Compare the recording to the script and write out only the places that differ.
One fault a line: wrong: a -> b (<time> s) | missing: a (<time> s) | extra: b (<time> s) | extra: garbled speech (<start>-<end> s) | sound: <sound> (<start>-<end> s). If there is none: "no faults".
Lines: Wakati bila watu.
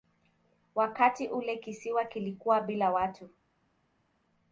extra: ule kisiwa kilikuwa (1.3 s)